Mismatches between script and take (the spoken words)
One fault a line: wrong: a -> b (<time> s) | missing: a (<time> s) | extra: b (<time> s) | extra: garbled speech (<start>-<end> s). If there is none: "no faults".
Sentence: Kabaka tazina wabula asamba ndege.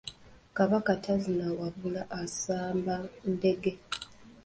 no faults